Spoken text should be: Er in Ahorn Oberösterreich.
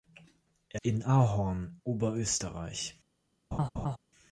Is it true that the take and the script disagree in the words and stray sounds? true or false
true